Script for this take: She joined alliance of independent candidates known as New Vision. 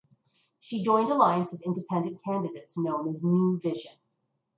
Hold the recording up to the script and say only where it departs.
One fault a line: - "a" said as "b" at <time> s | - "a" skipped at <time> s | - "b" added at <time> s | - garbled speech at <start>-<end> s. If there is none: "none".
none